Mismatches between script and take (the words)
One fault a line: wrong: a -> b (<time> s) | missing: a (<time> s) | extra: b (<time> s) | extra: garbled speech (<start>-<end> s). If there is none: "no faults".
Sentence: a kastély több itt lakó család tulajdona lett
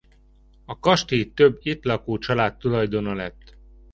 no faults